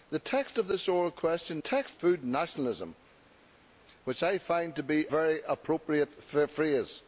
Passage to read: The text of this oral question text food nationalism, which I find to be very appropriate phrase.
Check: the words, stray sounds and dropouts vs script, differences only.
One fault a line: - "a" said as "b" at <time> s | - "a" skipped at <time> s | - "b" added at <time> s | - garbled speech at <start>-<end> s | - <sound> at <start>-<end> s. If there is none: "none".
none